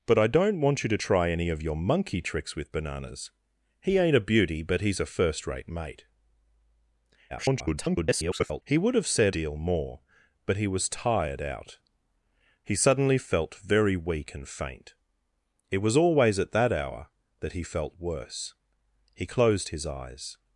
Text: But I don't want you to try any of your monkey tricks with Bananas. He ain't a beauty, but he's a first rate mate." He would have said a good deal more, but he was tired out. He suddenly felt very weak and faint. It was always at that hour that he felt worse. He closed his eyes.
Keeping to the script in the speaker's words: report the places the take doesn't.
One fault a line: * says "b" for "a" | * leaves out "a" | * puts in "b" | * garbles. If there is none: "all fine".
* garbles
* leaves out "a good"